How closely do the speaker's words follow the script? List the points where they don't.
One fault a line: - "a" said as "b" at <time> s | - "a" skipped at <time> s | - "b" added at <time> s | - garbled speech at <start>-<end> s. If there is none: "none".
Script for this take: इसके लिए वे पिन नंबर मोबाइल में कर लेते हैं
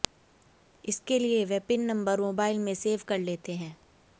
- "सेव" added at 2.8 s